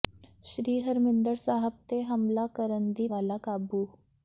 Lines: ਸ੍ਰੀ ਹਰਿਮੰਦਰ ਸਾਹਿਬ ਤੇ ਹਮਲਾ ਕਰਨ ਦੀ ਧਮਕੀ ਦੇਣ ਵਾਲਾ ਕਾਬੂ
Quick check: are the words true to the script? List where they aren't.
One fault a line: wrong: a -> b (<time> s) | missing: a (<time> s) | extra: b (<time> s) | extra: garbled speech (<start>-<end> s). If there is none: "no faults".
missing: ਧਮਕੀ ਦੇਣ (3.1 s)